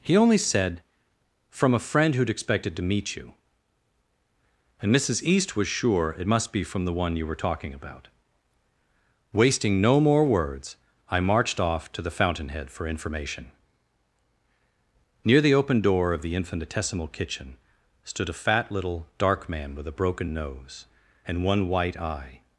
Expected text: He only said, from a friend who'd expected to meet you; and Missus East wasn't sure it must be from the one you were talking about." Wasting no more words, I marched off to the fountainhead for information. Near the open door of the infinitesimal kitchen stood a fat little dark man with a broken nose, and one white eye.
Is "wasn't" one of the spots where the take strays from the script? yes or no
yes